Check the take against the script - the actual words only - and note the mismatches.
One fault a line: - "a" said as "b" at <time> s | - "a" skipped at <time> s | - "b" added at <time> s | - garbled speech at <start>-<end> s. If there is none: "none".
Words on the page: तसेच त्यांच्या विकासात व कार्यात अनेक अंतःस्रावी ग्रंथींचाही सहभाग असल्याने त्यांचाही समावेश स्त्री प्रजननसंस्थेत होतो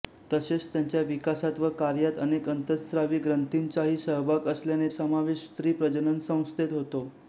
- "त्यांचाही" skipped at 4.9 s